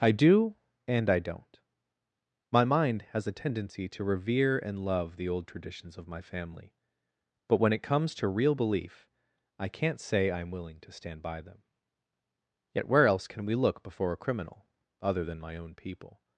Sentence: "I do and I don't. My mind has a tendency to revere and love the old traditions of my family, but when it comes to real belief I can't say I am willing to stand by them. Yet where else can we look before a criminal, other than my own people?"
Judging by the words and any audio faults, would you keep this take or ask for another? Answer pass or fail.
pass